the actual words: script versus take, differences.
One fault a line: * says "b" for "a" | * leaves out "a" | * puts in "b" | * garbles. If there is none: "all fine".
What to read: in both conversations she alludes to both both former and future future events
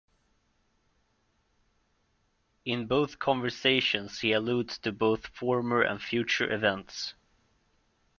* says "he" for "she"
* leaves out "both"
* leaves out "future"